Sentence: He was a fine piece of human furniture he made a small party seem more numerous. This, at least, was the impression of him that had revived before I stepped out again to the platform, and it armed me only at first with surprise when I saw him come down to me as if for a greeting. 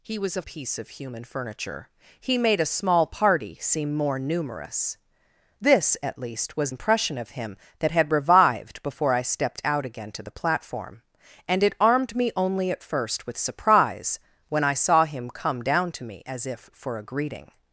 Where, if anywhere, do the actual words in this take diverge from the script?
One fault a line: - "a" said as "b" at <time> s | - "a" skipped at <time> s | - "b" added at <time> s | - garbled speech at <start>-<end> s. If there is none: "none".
- "fine" skipped at 0.4 s
- "the" skipped at 6.7 s